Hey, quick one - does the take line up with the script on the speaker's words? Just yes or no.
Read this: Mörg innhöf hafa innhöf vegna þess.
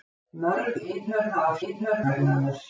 yes